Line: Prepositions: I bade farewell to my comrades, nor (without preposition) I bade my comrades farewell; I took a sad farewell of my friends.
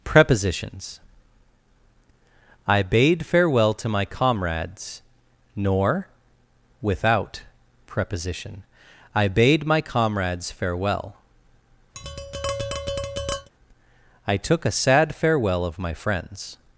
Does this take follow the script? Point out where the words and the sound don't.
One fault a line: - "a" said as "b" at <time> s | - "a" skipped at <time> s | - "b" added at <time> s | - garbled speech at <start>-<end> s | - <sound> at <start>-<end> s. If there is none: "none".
- tap at 11.9-13.5 s